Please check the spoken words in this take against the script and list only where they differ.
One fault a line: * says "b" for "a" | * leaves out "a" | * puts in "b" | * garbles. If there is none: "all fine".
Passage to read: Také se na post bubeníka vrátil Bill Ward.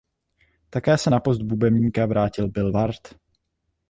all fine